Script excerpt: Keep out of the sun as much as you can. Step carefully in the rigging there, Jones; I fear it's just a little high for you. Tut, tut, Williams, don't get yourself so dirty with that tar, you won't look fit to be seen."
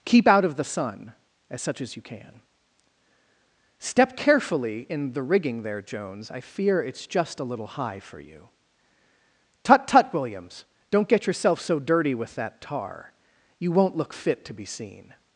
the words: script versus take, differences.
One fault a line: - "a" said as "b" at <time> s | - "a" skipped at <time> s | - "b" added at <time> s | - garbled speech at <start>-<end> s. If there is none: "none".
- "much" said as "such" at 1.6 s